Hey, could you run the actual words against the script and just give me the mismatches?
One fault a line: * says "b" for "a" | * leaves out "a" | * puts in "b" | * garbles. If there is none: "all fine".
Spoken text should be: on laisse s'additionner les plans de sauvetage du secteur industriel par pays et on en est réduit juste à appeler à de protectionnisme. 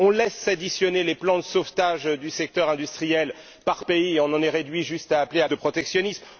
all fine